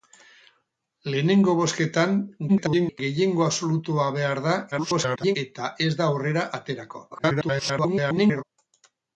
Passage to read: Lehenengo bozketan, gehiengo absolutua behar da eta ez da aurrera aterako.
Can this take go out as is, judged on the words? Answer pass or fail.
fail